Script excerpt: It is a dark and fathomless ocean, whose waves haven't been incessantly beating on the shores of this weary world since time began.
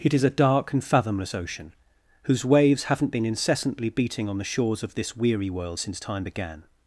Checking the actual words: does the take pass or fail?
pass